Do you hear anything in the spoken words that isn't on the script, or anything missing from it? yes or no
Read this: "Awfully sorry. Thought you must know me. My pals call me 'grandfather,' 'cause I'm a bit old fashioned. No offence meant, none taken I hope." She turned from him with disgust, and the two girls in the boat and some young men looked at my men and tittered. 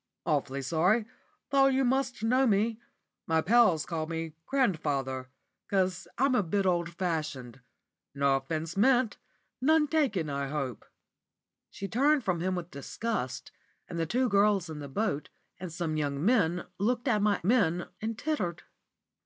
no